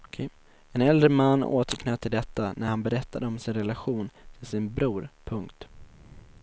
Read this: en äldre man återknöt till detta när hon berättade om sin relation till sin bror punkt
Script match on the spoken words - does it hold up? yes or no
no